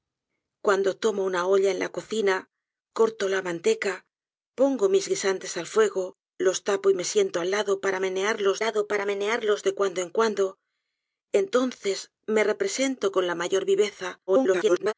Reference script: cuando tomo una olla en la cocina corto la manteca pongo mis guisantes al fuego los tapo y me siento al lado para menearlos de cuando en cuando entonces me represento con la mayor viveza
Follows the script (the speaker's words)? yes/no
no